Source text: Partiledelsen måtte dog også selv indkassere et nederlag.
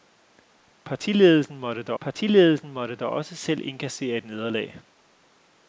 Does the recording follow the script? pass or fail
fail